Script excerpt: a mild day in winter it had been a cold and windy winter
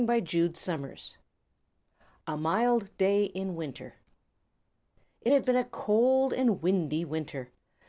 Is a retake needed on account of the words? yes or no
no